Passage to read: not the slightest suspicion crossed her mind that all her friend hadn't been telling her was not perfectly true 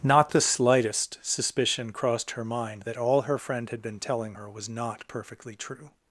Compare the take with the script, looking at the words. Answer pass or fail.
fail